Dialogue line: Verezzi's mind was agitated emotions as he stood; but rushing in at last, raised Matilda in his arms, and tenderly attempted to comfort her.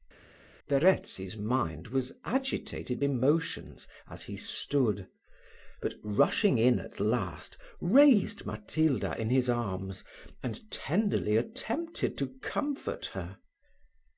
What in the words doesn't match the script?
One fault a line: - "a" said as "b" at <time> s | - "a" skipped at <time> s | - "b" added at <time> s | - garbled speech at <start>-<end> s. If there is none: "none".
none